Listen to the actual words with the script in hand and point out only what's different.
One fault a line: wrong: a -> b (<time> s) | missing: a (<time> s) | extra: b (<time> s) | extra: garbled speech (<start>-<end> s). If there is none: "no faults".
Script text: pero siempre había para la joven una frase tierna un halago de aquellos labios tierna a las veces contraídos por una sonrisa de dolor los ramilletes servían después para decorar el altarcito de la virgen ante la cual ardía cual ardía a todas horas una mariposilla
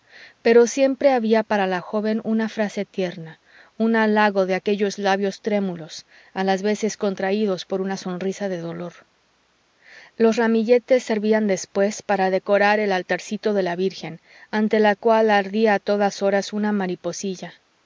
wrong: tierna -> trémulos (5.4 s)
missing: cual ardía (15.8 s)